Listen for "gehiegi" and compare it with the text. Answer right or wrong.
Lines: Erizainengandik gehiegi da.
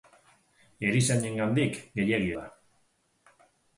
right